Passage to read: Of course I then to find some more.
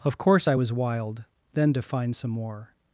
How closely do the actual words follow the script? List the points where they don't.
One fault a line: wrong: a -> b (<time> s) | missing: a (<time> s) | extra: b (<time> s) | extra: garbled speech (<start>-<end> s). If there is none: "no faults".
extra: was wild (0.5 s)